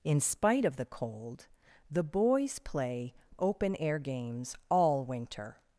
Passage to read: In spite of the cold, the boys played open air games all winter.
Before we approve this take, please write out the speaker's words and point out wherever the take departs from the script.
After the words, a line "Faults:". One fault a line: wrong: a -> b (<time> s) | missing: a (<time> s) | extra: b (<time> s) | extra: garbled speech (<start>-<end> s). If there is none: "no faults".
In spite of the cold, the boys play open air games all winter.
Faults:
wrong: played -> play (2.6 s)